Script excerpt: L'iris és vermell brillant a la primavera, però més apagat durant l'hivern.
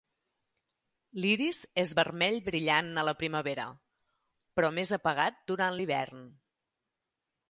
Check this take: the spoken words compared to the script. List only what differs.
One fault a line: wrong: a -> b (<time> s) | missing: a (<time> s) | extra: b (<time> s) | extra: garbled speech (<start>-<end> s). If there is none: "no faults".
no faults